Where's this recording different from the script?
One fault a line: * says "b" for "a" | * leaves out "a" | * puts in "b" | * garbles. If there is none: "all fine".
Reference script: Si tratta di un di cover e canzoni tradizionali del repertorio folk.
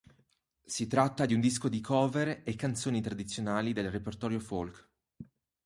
* puts in "disco"